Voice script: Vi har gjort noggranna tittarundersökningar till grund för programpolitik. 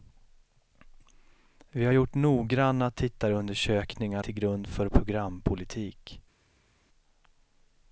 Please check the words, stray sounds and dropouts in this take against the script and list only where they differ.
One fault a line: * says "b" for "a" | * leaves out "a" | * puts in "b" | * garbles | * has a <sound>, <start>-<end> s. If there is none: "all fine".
all fine